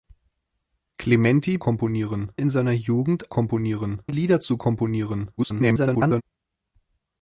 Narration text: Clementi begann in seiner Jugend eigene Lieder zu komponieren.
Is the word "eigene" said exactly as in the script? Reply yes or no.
no